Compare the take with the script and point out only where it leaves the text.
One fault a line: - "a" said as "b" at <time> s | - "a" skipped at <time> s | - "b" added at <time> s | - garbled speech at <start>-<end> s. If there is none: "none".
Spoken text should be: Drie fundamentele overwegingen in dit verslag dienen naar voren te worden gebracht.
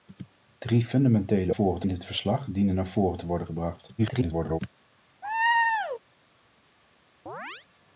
- "overwegingen" said as "voren" at 1.5 s
- garbled speech at 4.0-4.6 s